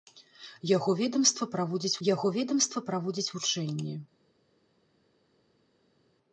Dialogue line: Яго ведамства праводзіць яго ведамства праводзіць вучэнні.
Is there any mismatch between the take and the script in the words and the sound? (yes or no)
no